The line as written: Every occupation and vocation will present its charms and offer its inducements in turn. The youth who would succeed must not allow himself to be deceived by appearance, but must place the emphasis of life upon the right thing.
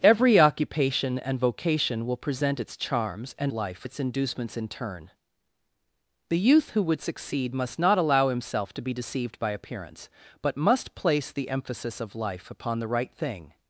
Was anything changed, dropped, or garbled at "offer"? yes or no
yes